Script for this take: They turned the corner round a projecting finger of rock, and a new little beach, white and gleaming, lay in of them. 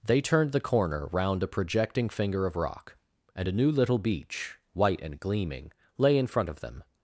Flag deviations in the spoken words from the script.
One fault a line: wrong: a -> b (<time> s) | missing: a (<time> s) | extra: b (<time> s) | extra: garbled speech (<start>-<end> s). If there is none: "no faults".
extra: front (6.3 s)